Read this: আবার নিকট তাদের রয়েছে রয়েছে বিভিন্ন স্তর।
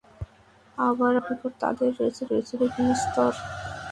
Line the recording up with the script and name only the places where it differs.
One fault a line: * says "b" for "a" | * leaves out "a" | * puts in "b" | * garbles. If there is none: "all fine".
all fine